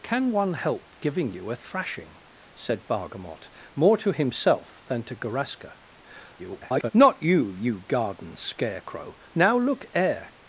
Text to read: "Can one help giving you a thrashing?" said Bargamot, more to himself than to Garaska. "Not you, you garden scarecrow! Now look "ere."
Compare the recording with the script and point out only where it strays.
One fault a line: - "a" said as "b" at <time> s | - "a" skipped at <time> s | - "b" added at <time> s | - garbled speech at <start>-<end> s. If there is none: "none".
- garbled speech at 6.4-6.9 s